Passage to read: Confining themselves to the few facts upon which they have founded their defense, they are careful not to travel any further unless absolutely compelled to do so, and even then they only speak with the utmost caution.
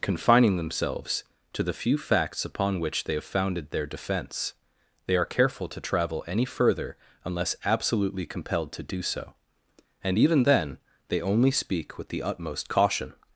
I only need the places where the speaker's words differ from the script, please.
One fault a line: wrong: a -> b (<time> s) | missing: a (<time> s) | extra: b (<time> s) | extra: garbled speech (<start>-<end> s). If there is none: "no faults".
missing: not (5.7 s)